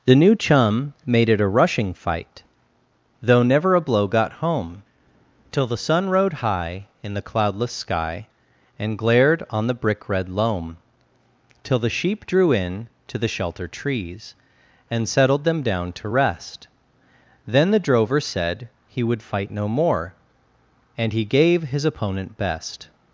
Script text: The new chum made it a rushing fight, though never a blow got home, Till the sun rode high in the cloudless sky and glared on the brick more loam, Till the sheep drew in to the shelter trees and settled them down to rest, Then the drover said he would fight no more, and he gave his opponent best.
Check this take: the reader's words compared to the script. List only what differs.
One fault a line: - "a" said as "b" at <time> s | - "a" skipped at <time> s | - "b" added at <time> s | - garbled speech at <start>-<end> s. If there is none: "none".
- "more" said as "red" at 10.1 s